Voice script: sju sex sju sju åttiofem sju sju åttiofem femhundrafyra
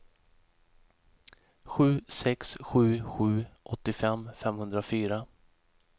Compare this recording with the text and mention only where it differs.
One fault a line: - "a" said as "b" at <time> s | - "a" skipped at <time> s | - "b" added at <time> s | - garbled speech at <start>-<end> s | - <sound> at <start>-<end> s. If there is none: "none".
- "sju sju åttiofem" skipped at 4.3 s